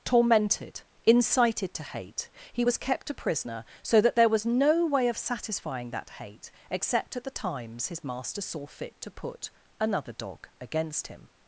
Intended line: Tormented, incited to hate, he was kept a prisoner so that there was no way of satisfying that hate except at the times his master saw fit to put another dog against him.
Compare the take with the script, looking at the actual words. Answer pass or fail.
pass